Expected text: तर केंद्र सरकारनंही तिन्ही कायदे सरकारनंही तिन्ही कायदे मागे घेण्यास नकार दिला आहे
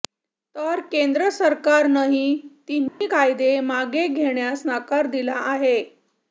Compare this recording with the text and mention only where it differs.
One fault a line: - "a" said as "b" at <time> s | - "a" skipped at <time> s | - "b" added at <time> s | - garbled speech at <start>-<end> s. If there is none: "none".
- "सरकारनंही तिन्ही कायदे" skipped at 3.5 s